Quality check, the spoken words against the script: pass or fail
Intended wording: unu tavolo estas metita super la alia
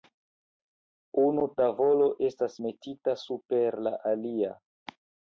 pass